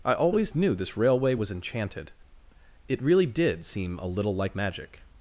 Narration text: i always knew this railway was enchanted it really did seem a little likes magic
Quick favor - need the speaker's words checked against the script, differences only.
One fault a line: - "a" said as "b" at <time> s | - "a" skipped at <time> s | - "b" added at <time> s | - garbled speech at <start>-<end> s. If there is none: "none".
- "likes" said as "like" at 4.3 s